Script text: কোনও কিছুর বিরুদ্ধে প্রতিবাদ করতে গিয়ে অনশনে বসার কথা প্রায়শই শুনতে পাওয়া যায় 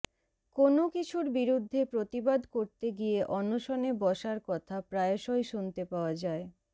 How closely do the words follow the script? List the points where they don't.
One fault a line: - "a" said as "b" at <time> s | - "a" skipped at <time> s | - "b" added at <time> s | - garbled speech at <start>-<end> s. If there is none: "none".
none